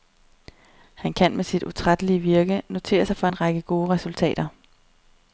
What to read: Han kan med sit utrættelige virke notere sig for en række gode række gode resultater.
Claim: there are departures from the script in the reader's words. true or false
true